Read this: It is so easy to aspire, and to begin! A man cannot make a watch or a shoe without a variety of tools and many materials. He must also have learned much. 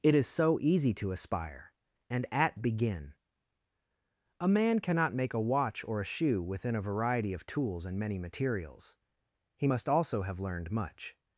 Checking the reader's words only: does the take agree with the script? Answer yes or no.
no